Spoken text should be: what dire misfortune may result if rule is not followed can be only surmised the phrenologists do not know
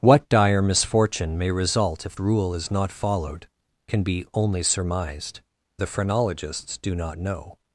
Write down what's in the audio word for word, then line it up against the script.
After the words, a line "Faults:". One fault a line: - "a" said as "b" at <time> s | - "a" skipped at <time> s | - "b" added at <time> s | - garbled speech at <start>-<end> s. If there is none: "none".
what dire misfortune may result if rule is not followed can be only surmised the phrenologists do not know
Faults:
none